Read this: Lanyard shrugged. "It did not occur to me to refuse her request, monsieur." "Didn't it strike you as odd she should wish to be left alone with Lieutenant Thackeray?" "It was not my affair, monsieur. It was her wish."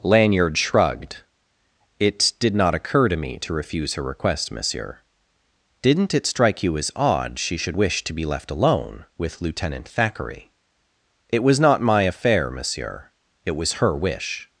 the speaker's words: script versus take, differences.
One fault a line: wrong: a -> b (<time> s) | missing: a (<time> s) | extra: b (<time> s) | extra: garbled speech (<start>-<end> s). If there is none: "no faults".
no faults